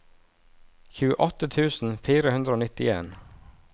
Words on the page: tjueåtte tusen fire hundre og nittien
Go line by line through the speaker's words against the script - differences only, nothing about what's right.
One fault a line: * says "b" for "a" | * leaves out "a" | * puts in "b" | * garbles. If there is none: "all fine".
all fine